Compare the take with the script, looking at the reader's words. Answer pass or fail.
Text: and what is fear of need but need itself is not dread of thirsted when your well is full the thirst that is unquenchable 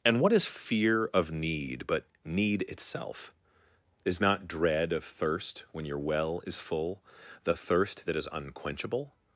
fail